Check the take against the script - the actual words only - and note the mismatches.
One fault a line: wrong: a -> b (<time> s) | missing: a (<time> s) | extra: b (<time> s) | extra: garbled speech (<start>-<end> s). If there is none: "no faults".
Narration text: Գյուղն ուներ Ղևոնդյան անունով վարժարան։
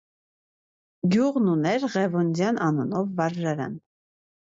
no faults